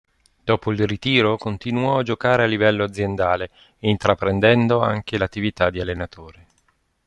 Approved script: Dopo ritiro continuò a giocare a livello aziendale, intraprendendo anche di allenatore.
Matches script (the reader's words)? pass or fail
fail